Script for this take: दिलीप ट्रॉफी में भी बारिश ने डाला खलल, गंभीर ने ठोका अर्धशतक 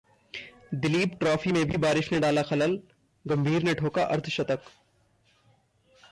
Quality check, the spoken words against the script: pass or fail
pass